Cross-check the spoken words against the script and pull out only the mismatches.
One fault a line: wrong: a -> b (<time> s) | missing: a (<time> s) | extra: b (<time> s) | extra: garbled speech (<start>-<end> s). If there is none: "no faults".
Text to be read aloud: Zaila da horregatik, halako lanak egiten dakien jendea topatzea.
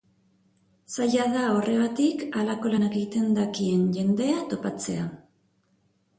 no faults